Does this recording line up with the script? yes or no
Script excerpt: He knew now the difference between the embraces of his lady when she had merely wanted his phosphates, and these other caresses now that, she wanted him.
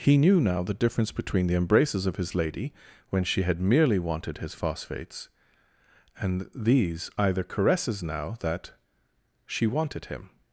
no